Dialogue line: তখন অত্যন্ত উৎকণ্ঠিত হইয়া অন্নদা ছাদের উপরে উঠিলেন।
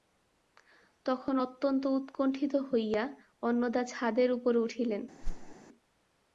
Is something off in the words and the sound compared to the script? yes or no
yes